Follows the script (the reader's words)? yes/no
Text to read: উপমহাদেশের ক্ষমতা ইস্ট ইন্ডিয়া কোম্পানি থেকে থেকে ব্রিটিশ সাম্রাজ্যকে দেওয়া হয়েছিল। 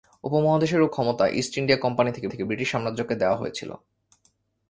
yes